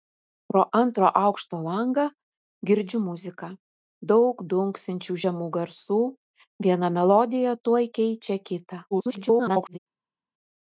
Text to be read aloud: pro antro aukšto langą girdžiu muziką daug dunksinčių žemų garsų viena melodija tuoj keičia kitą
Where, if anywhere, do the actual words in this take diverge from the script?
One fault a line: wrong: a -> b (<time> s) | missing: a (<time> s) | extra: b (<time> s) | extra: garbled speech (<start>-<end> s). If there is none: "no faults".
extra: garbled speech (8.9-9.8 s)